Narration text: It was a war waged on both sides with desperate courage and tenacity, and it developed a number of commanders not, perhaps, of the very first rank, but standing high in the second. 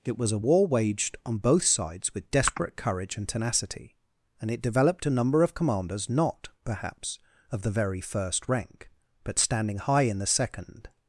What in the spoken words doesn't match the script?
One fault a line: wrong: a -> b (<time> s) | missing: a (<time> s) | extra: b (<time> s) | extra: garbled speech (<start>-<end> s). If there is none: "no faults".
no faults